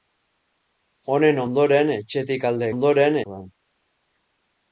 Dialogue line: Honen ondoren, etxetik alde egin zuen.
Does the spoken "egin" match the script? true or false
false